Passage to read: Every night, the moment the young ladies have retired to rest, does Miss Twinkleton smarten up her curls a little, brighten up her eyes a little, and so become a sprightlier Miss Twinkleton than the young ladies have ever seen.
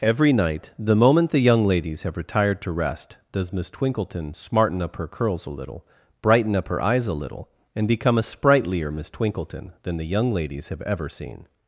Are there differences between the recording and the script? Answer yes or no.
yes